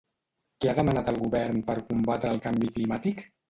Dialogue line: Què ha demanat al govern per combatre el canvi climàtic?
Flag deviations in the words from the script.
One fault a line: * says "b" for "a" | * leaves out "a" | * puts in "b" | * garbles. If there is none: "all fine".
all fine